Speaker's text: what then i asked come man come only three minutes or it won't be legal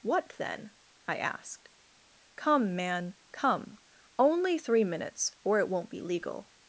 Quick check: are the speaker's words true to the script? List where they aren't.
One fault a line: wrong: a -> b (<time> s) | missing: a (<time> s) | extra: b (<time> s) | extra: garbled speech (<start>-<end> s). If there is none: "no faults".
no faults